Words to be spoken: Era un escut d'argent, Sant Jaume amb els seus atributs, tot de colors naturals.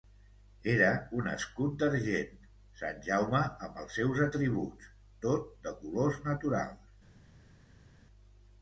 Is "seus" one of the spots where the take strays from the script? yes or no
no